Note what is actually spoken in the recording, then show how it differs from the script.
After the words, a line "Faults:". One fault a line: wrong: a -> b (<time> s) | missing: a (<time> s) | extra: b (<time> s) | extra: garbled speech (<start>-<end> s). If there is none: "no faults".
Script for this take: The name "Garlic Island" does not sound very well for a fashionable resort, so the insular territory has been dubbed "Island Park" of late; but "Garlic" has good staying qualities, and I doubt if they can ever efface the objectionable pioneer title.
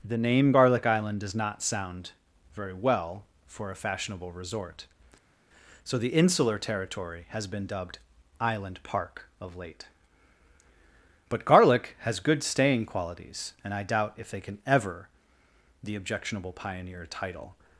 The name "Garlic Island" does not sound very well for a fashionable resort, so the insular territory has been dubbed "Island Park" of late; but "Garlic" has good staying qualities, and I doubt if they can ever the objectionable pioneer title.
Faults:
missing: efface (15.1 s)